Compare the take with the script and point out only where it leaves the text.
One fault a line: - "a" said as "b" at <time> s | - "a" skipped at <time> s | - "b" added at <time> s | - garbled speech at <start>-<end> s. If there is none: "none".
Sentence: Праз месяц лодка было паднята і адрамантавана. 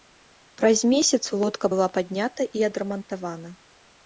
- "было" said as "была" at 1.7 s